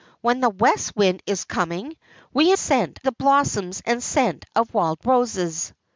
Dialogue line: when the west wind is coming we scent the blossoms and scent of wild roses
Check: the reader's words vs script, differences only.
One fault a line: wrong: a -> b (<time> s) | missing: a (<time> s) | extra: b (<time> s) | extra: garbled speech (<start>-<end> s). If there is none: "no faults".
no faults